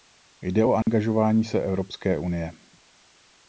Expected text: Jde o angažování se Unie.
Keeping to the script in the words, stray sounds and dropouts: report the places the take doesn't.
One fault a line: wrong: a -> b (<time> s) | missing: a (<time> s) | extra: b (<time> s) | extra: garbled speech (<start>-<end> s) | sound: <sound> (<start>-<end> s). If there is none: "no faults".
sound: dropout (0.8-0.9 s)
extra: Evropské (1.6 s)